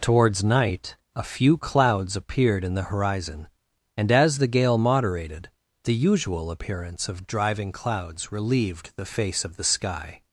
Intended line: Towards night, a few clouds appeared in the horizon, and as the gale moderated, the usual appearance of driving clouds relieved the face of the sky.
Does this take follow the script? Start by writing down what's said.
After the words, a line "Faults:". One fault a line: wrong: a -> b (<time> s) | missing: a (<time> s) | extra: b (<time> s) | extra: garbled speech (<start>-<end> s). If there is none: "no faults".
Towards night, a few clouds appeared in the horizon, and as the gale moderated, the usual appearance of driving clouds relieved the face of the sky.
Faults:
no faults